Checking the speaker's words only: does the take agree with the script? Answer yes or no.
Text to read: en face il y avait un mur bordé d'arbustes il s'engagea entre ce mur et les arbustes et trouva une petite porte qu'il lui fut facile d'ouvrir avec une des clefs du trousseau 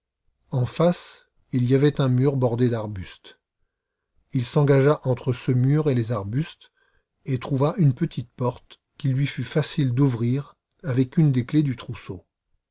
yes